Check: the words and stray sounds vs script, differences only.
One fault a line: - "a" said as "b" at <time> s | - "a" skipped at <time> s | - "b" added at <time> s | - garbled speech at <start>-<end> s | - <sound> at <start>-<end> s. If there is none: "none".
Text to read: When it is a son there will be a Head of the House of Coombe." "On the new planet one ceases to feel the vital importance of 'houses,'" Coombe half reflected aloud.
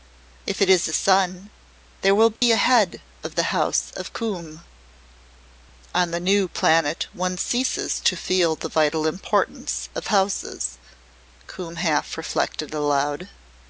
- "When" said as "If" at 0.5 s
- dropout at 2.4-2.4 s